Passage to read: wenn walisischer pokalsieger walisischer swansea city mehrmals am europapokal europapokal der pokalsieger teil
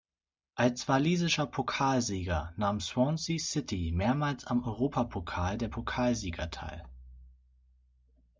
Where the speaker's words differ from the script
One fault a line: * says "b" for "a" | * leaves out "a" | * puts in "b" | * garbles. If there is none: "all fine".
* says "als" for "wenn"
* says "nahm" for "walisischer"
* leaves out "europapokal"